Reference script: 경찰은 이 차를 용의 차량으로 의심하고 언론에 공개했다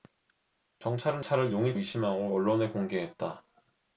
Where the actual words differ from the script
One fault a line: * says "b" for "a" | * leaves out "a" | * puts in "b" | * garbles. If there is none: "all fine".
* leaves out "이"
* leaves out "차량으로"